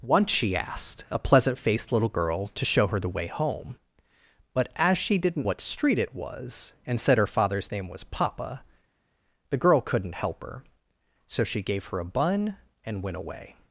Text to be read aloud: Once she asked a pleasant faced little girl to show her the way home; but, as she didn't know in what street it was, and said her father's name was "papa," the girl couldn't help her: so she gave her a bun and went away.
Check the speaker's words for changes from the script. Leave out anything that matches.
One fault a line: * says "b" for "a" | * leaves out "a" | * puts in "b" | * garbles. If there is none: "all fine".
* leaves out "know in"